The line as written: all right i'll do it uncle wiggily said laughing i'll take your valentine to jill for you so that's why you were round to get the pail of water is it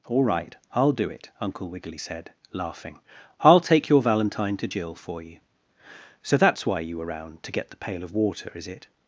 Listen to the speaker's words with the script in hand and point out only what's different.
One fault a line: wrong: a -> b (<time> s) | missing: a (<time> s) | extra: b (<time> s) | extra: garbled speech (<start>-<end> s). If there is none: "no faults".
no faults